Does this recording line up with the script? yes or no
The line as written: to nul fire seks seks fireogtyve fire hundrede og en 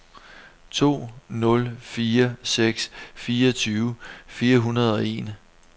no